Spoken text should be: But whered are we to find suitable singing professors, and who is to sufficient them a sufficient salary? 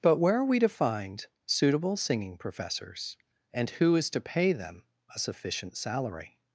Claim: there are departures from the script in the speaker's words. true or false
true